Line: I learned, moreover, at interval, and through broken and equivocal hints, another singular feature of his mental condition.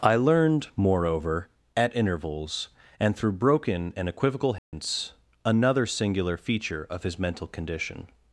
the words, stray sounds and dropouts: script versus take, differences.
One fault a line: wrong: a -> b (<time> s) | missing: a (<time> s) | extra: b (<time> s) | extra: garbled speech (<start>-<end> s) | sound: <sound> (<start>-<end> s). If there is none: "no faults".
wrong: interval -> intervals (1.9 s)
sound: dropout (4.6-4.7 s)